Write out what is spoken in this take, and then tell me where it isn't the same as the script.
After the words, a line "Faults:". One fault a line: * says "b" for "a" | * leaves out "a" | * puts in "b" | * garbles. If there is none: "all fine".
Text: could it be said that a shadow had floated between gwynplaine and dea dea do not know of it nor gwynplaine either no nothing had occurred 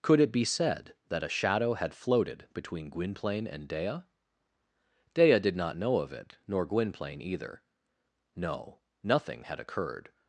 could it be said that a shadow had floated between gwynplaine and dea dea did not know of it nor gwynplaine either no nothing had occurred
Faults:
* says "did" for "do"